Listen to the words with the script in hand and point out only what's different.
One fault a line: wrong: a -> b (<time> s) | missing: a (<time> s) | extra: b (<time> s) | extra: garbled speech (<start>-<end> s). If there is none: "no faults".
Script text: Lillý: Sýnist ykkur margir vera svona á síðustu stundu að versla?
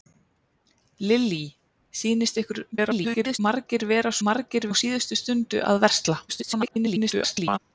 extra: garbled speech (2.7-3.4 s)
wrong: svona -> margir (4.3 s)
extra: garbled speech (6.3-7.6 s)